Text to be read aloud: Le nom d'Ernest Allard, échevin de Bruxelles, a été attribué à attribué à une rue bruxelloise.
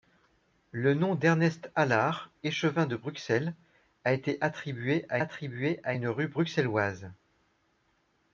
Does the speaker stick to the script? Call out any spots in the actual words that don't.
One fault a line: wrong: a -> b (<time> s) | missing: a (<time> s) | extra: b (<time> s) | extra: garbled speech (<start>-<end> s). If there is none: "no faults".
no faults